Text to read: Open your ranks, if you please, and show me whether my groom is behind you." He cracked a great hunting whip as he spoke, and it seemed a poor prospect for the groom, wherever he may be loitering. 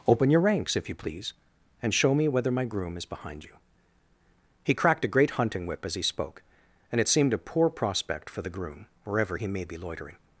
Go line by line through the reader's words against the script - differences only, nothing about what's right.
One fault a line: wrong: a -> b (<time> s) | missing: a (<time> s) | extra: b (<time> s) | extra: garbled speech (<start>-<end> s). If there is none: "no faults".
no faults